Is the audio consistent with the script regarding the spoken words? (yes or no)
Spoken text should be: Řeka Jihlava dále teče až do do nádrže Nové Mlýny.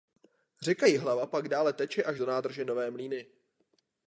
no